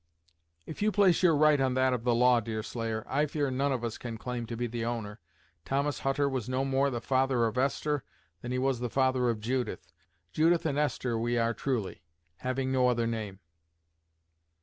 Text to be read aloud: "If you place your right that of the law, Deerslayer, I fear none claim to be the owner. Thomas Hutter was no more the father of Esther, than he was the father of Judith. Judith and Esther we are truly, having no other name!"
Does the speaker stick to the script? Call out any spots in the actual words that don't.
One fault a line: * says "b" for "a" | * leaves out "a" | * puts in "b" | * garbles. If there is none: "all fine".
* puts in "on"
* puts in "of us can"